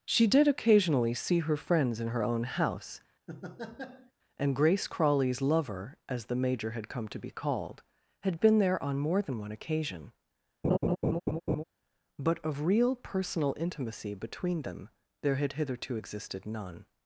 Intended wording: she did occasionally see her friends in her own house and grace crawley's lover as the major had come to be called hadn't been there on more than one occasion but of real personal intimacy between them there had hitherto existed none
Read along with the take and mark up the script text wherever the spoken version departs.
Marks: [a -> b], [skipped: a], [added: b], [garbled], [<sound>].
she did occasionally see her friends in her own house [laugh] and grace crawley's lover as the major had come to be called [hadn't -> had] been there on more than one occasion [laugh] but of real personal intimacy between them there had hitherto existed none